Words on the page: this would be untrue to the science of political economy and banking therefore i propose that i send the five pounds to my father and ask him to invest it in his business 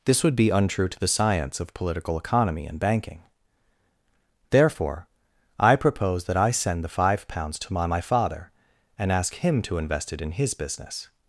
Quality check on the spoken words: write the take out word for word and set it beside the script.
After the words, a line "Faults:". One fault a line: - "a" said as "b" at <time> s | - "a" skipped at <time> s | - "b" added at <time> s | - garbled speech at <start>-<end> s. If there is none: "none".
this would be untrue to the science of political economy and banking therefore i propose that i send the five pounds to my my father and ask him to invest it in his business
Faults:
- "my" added at 7.9 s